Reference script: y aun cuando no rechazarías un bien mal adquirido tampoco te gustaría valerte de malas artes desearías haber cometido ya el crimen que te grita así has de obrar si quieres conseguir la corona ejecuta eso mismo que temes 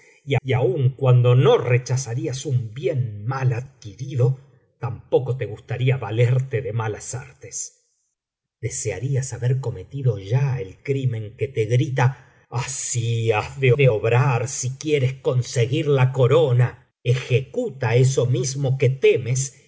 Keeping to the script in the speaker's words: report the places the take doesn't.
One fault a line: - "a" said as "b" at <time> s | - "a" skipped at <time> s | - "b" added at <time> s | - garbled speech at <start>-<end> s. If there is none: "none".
- "y" added at 0.4 s
- "de" added at 13.8 s